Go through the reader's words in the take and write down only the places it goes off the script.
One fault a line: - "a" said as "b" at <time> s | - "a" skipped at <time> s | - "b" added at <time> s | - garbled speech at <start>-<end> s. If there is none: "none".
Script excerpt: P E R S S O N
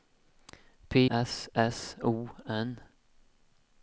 - "E R" skipped at 0.9 s